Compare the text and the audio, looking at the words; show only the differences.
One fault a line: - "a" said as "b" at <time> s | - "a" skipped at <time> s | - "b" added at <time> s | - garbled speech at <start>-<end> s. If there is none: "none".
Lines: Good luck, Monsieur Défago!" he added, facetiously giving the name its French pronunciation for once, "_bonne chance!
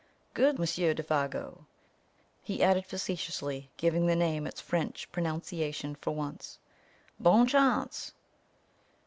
- "luck" skipped at 0.6 s